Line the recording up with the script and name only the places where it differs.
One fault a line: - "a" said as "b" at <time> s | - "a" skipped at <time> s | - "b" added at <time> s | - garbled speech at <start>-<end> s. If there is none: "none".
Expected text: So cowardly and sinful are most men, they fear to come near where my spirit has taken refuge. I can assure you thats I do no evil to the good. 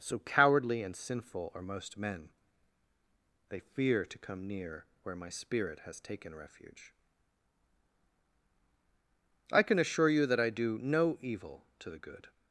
- "thats" said as "that" at 10.2 s